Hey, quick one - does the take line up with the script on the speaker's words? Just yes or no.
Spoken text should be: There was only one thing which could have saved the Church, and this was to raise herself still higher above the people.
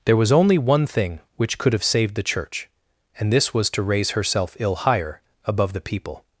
no